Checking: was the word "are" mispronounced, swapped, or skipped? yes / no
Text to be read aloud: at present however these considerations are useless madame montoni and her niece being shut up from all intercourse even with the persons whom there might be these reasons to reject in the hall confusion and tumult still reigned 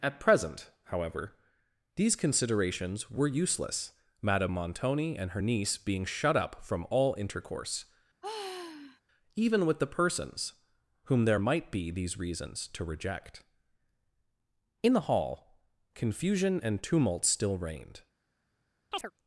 yes